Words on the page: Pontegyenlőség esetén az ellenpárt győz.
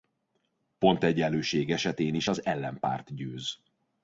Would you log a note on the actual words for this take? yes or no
yes